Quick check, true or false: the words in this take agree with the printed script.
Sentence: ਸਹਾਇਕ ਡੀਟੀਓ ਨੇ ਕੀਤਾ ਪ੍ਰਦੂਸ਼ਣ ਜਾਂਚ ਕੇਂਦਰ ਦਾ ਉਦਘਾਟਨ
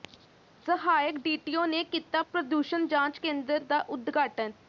true